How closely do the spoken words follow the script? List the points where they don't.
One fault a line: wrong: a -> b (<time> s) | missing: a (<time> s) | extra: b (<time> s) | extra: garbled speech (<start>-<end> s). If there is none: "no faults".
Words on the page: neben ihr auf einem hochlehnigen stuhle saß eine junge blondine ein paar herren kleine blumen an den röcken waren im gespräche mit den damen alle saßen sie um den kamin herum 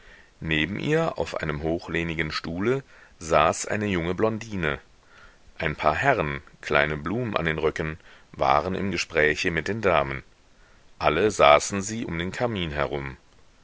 no faults